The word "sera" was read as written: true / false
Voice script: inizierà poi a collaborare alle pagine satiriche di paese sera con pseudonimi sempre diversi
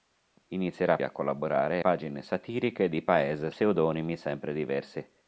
false